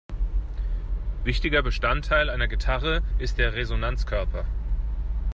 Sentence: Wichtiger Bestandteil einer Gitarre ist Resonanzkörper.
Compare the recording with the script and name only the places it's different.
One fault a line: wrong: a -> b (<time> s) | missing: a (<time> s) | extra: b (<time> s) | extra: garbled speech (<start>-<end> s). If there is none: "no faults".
extra: der (3.4 s)